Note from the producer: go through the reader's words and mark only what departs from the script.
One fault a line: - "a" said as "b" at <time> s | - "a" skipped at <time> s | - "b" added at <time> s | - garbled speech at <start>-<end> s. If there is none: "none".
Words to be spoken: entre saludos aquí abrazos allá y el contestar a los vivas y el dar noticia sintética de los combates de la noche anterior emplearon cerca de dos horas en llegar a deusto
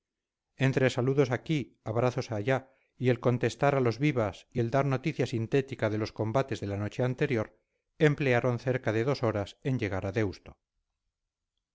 none